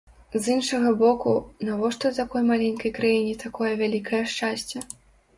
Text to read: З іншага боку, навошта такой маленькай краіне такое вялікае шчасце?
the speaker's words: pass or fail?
pass